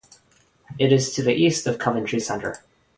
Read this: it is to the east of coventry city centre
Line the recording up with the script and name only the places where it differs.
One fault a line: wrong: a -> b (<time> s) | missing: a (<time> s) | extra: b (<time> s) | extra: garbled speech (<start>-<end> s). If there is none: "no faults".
missing: city (2.2 s)